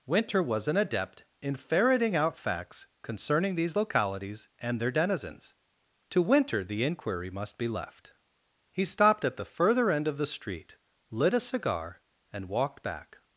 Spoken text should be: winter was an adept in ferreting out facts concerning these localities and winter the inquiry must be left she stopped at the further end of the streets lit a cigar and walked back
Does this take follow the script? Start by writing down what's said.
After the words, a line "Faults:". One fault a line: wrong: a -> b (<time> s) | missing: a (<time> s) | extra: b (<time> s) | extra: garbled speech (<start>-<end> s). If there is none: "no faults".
winter was an adept in ferreting out facts concerning these localities and their denizens to winter the inquiry must be left he stopped at the further end of the street lit a cigar and walked back
Faults:
extra: their denizens to (4.8 s)
wrong: she -> he (8.7 s)
wrong: streets -> street (10.3 s)